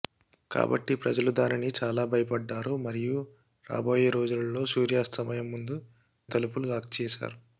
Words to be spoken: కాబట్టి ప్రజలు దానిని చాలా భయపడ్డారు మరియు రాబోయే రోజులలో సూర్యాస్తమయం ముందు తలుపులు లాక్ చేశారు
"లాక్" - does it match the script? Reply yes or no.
yes